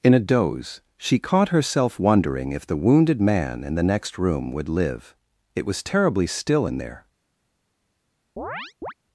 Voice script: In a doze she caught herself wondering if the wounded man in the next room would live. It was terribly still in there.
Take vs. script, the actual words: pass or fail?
pass